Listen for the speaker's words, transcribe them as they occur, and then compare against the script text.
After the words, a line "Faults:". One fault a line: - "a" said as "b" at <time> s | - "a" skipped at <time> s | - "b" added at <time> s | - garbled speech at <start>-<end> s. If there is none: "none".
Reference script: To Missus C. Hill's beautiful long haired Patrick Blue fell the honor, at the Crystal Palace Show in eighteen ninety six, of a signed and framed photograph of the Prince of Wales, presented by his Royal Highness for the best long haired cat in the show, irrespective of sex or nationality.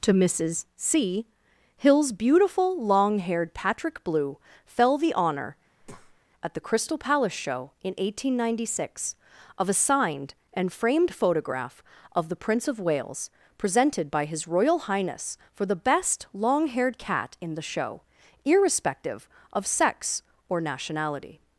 To Missus C. Hill's beautiful long haired Patrick Blue fell the honor, at the Crystal Palace Show in eighteen ninety six, of a signed and framed photograph of the Prince of Wales, presented by his Royal Highness for the best long haired cat in the show, irrespective of sex or nationality.
Faults:
none